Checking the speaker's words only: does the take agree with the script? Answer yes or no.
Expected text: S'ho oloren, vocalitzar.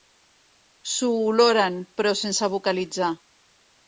no